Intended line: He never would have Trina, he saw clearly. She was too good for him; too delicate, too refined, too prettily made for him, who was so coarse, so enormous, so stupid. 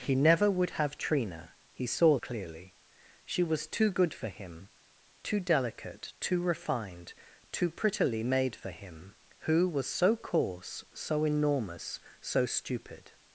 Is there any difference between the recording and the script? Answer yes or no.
no